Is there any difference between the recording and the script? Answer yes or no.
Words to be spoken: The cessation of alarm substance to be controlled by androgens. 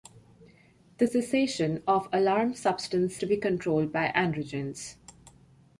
no